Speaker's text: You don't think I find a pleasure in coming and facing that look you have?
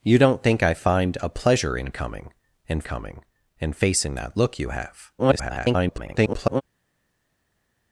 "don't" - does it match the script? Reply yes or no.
yes